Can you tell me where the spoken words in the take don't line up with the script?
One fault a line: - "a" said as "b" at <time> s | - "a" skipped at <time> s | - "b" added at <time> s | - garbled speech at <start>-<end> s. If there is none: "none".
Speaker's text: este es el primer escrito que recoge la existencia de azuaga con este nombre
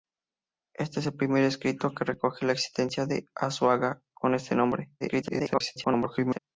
- garbled speech at 5.0-6.4 s